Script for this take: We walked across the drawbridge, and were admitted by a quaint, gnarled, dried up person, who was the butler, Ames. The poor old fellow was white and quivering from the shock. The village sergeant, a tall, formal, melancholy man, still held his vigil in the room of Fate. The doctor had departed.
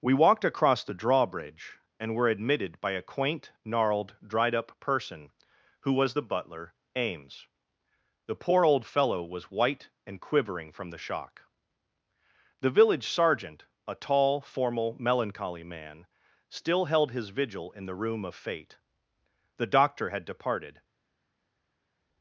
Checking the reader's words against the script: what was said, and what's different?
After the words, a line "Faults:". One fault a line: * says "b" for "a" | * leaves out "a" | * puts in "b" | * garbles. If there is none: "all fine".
We walked across the drawbridge, and were admitted by a quaint, gnarled, dried up person, who was the butler, Ames. The poor old fellow was white and quivering from the shock. The village sergeant, a tall, formal, melancholy man, still held his vigil in the room of Fate. The doctor had departed.
Faults:
all fine